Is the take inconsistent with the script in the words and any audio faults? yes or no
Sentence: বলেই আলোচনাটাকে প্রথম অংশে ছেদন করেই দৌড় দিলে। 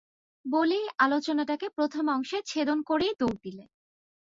no